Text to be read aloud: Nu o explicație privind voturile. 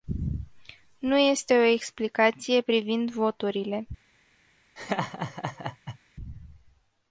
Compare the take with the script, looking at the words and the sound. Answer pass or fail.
fail